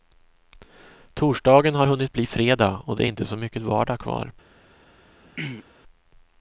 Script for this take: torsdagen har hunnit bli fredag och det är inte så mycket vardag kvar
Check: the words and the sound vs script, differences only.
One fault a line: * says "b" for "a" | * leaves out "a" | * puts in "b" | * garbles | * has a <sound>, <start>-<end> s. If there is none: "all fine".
* has a throat clearing, 5.3-5.6 s